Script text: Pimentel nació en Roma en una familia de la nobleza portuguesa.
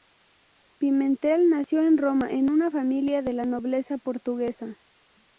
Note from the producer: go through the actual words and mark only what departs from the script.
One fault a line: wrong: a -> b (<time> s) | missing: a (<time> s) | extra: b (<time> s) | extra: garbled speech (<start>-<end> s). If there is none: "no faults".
no faults